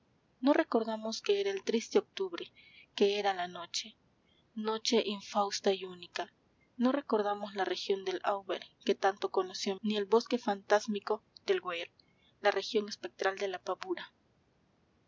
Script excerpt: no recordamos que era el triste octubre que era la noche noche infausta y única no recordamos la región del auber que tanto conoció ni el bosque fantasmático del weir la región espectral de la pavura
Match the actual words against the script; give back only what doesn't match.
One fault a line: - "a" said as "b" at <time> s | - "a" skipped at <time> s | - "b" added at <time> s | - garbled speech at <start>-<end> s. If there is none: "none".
none